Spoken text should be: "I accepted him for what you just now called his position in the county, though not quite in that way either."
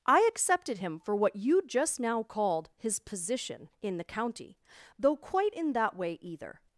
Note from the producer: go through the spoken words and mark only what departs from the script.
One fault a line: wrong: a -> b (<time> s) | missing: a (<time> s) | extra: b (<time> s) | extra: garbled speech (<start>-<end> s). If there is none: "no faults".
missing: not (5.2 s)